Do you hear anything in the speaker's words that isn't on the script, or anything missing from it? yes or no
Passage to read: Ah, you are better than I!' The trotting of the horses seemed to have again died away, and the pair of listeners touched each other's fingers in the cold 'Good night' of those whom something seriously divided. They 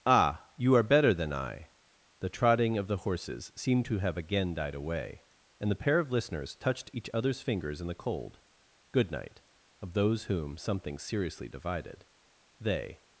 no